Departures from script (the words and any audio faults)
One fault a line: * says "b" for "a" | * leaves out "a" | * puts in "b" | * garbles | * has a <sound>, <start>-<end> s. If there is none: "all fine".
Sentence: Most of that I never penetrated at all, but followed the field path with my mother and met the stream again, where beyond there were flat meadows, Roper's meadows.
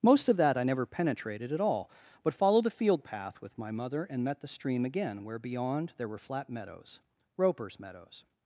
all fine